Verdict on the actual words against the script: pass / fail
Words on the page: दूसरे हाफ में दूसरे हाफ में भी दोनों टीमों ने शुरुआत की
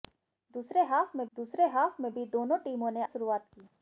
pass